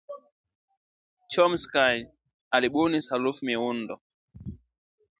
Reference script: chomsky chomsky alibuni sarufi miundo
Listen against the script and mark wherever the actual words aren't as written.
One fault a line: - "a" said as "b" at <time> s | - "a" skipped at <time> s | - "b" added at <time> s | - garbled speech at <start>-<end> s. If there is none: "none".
- "chomsky" skipped at 1.9 s